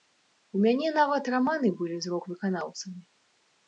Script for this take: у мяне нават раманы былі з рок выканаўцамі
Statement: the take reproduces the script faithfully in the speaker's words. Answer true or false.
true